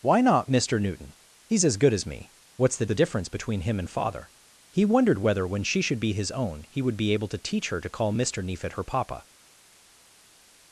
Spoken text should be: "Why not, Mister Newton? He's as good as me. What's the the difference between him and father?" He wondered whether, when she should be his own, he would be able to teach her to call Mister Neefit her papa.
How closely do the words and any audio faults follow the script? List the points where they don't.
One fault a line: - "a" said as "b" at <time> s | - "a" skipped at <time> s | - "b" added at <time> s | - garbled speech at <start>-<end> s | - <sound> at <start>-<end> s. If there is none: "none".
none